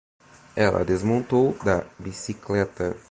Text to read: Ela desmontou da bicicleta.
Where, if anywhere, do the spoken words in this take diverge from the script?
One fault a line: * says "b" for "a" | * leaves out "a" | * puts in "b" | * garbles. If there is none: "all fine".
all fine